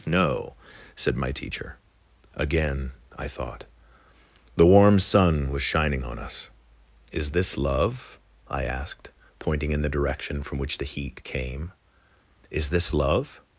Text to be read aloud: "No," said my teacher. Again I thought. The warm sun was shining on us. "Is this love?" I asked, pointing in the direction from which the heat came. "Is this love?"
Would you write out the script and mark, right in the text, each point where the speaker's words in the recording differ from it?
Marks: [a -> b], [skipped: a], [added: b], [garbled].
"No," said my teacher. Again I thought. The warm sun was shining on us. "Is this love?" I asked, pointing in the direction from which the heat came. "Is this love?"